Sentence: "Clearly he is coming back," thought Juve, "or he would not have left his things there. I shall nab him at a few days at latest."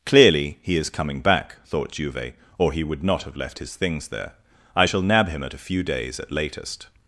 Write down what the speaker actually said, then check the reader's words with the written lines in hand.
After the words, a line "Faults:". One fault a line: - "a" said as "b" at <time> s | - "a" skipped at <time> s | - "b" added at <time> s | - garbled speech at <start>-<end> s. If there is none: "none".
"Clearly he is coming back," thought Juve, "or he would not have left his things there. I shall nab him at a few days at latest."
Faults:
none